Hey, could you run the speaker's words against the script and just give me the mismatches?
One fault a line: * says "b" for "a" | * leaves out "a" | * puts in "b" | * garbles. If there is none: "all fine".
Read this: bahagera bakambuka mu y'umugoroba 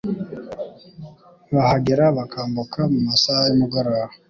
* puts in "masaha"